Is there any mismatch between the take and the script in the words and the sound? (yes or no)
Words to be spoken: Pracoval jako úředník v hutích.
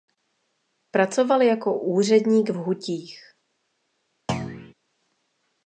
yes